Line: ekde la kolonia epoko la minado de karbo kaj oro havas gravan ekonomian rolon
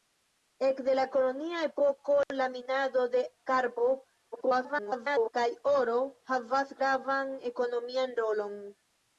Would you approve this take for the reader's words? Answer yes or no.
no